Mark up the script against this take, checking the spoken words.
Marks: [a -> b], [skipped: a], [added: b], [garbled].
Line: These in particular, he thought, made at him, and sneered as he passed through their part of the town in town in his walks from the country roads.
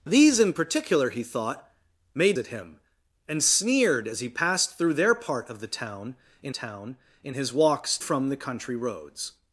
These in particular, he thought, made at him, and sneered as he passed through their part of the town in town in his walks from the country roads.